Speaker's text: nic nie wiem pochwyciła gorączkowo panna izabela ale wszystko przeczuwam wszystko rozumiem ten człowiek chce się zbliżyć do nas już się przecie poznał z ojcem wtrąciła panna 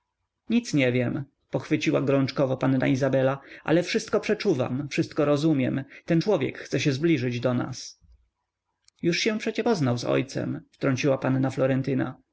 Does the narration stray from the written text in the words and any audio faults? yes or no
no